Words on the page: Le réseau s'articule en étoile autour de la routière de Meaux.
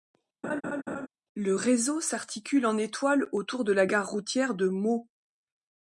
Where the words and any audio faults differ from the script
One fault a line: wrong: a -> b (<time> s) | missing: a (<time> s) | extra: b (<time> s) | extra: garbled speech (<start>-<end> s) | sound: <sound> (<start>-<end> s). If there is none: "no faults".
sound: laugh (0.4-1.1 s)
extra: gare (3.8 s)